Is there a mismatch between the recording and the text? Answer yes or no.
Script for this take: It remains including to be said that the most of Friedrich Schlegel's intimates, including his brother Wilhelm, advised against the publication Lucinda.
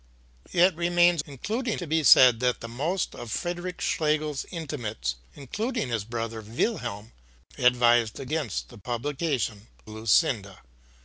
no